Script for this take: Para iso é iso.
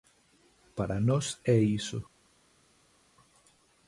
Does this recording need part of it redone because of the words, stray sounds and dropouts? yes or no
yes